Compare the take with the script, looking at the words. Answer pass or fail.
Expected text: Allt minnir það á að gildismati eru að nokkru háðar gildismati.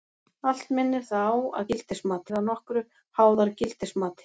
pass